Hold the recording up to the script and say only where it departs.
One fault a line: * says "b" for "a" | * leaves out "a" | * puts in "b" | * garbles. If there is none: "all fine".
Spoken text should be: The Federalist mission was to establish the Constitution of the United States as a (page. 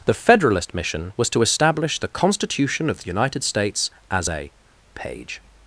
all fine